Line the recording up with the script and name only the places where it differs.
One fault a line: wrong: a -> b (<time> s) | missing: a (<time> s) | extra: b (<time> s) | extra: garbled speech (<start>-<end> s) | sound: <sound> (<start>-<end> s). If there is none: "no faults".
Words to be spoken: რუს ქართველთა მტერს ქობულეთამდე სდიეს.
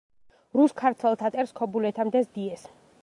no faults